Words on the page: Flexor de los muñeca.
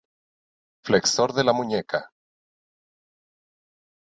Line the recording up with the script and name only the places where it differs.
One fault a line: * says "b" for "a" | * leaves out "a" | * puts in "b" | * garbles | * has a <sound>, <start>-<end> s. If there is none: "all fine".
* says "la" for "los"